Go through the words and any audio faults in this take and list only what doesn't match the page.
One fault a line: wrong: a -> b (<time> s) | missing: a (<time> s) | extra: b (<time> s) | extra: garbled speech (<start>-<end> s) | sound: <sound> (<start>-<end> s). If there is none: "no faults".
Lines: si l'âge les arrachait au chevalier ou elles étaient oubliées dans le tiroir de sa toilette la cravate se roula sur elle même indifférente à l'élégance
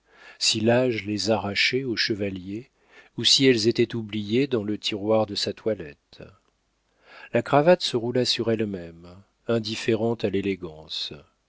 extra: si (3.2 s)